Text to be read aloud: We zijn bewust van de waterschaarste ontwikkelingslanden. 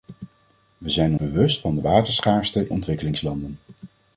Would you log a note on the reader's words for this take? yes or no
no